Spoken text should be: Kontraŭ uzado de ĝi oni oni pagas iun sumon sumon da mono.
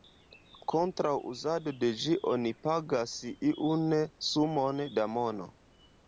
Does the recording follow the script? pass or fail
fail